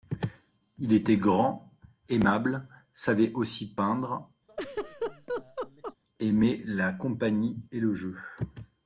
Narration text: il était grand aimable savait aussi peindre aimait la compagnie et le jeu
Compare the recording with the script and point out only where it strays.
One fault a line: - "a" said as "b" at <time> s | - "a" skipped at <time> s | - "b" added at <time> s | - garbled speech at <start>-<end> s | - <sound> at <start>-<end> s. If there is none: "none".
- laugh at 4.5-6.0 s